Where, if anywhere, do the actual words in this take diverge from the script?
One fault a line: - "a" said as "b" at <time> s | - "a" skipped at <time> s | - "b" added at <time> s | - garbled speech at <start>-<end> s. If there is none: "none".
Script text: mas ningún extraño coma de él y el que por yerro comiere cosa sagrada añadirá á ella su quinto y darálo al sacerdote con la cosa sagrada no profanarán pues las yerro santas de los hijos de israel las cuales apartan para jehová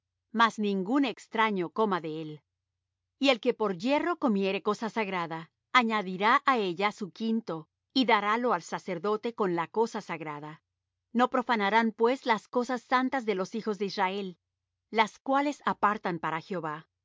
- "yerro" said as "cosas" at 12.5 s